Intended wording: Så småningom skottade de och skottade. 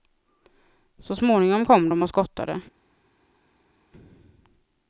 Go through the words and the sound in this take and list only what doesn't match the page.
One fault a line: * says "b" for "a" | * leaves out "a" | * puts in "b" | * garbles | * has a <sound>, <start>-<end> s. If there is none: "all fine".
* says "kom" for "skottade"